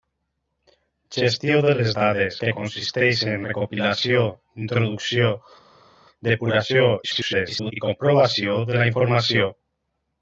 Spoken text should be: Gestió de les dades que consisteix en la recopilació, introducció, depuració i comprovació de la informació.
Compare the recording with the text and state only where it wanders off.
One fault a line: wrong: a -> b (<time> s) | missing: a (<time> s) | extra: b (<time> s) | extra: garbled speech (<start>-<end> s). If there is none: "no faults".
missing: la (3.4 s)
extra: garbled speech (7.0-7.7 s)